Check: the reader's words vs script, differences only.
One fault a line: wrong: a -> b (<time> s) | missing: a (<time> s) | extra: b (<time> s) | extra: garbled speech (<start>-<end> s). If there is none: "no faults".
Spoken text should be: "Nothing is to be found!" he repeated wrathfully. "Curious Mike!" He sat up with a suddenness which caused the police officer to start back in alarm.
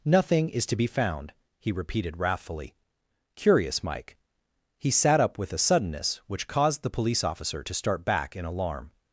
no faults